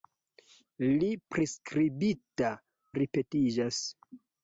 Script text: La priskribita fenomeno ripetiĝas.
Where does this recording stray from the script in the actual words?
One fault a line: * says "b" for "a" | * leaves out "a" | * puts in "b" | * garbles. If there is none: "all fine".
* leaves out "fenomeno"